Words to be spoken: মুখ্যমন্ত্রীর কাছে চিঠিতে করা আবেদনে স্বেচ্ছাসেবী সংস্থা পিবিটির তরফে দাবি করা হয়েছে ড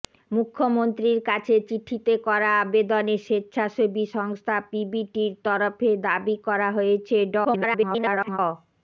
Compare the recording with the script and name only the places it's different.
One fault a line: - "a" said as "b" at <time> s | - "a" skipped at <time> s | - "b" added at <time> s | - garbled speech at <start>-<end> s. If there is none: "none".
- garbled speech at 7.4-8.4 s